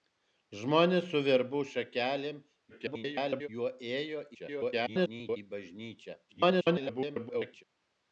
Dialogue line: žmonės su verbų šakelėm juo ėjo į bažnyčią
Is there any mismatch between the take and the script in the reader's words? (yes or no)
yes